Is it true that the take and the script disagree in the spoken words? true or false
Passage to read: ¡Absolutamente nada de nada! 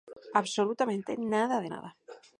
false